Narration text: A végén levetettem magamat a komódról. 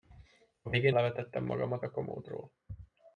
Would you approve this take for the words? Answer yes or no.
yes